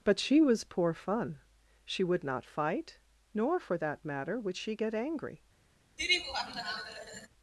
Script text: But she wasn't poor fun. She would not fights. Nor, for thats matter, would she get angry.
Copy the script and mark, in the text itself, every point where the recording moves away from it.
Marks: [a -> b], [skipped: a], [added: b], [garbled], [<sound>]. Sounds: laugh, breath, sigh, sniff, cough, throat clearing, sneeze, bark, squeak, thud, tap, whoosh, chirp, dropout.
But she [wasn't -> was] poor fun. She would not [fights. -> fight] Nor, for [thats -> that] matter, would she get angry. [laugh]